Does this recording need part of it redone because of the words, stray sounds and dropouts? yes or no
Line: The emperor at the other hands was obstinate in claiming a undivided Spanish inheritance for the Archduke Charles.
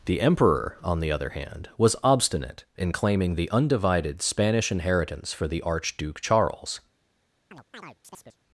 yes